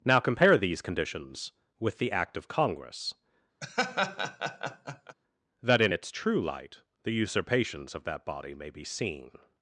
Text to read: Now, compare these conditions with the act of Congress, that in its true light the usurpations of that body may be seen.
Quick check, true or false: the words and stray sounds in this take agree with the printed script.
false